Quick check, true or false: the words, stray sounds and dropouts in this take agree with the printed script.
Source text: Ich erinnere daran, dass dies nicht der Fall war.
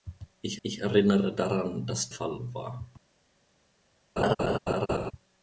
false